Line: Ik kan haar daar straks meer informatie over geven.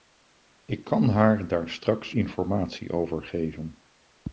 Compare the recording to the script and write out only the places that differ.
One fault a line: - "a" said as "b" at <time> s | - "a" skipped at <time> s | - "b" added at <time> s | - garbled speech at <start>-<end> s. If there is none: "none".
- "meer" skipped at 2.1 s